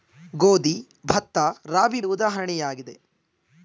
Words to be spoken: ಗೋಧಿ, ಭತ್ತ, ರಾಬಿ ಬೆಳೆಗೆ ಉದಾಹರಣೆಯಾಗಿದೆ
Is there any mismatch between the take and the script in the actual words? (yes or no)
yes